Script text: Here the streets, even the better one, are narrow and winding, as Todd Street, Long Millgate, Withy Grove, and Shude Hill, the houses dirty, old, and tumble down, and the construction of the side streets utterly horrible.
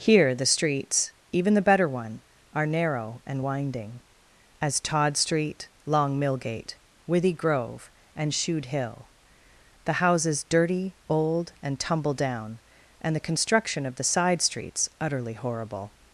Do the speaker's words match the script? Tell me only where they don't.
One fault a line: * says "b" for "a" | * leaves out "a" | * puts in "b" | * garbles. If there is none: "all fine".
all fine